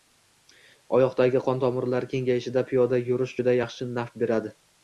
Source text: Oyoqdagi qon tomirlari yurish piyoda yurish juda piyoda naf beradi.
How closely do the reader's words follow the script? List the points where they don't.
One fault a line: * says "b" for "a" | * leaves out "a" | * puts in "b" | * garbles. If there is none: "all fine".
* says "kengayishida" for "yurish"
* says "yaxshi" for "piyoda"